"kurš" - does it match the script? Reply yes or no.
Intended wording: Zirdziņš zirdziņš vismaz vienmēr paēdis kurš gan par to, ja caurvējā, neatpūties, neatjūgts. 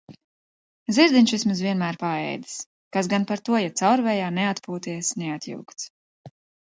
no